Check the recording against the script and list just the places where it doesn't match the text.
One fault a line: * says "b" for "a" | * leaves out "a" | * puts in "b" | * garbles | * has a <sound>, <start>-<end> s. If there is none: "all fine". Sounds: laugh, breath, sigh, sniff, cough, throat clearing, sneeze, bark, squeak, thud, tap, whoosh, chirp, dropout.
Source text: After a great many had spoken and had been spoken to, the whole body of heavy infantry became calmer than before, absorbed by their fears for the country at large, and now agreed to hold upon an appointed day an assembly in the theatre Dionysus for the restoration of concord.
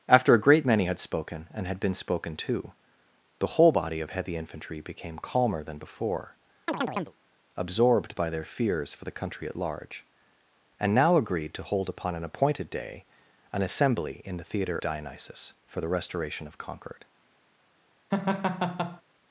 * has a chirp, 6.7-7.2 s
* has a laugh, 18.1-19.0 s